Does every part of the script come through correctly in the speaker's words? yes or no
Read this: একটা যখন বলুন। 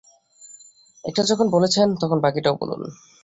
no